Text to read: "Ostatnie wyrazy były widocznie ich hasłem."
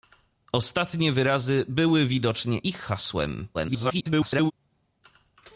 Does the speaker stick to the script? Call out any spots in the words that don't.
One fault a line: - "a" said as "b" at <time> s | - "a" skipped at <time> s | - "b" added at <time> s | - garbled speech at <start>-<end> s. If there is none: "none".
- garbled speech at 3.5-4.5 s